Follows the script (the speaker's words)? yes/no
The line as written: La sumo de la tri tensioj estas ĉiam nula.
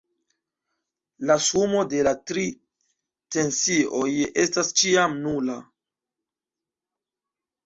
yes